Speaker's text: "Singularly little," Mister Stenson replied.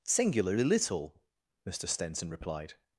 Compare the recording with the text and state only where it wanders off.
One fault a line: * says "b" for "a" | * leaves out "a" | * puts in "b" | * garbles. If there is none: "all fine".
all fine